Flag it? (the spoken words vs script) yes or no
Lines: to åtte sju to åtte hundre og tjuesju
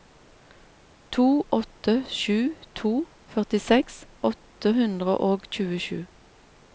yes